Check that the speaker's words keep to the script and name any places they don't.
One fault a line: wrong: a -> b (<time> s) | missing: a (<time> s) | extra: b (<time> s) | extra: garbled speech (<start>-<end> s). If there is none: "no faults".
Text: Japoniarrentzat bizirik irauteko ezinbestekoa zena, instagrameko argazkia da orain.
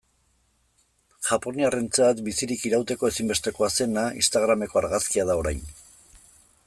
no faults